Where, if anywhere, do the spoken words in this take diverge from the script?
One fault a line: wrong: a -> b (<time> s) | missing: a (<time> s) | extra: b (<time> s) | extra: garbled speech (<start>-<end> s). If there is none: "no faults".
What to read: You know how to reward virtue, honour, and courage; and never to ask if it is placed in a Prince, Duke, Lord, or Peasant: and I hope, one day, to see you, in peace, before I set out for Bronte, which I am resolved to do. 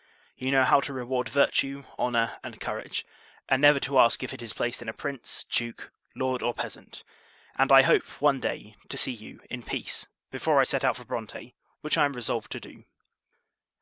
no faults